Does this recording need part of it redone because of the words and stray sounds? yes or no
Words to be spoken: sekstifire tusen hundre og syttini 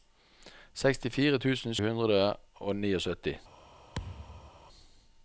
yes